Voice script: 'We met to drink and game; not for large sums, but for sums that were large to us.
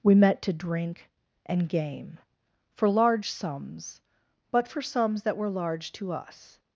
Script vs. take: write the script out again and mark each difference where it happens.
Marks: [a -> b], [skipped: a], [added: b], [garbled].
'We met to drink and game; [skipped: not] for large sums, but for sums that were large to us.